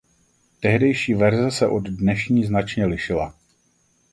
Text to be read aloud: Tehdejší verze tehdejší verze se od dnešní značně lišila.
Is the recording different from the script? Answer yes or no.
yes